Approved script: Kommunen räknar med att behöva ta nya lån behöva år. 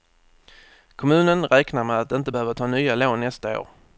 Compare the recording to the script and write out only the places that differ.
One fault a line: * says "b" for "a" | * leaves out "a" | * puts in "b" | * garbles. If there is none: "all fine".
* puts in "inte"
* says "nästa" for "behöva"